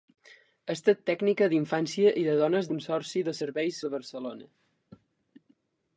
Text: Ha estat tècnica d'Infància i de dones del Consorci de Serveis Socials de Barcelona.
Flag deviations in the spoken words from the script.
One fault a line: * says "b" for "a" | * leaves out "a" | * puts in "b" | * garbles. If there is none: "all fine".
* leaves out "del"
* leaves out "Socials"